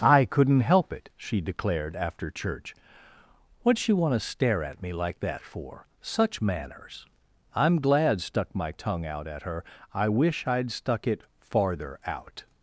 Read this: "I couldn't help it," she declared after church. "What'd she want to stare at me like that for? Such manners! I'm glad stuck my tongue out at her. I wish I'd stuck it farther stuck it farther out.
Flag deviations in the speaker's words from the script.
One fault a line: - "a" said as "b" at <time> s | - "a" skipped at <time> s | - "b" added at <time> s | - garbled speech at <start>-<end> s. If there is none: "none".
- "stuck it farther" skipped at 12.0 s